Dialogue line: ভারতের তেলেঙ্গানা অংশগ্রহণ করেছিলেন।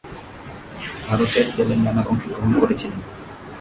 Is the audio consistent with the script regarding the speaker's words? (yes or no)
yes